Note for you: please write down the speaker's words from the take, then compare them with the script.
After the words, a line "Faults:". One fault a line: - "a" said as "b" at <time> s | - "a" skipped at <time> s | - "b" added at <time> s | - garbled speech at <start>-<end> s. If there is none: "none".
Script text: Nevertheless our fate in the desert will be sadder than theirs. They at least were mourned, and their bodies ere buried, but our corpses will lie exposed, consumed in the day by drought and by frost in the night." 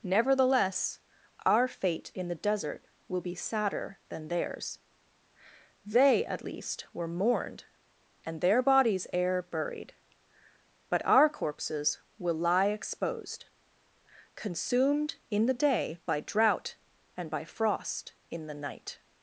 Nevertheless our fate in the desert will be sadder than theirs. They at least were mourned, and their bodies ere buried, but our corpses will lie exposed, consumed in the day by drought and by frost in the night."
Faults:
none